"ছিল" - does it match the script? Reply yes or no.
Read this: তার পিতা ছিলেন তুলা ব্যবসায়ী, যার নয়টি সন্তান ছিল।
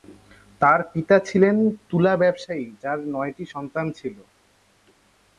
yes